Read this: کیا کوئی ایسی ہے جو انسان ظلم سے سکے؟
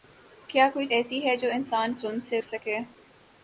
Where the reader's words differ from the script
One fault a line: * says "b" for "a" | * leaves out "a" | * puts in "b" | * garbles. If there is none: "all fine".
all fine